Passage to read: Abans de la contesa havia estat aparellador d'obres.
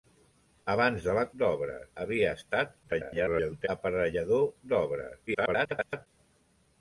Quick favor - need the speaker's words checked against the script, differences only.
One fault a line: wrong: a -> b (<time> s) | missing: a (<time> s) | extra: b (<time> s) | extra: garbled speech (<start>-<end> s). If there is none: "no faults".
wrong: contesa -> d'obres (1.4 s)
extra: garbled speech (2.8-3.7 s)
extra: garbled speech (5.3-6.1 s)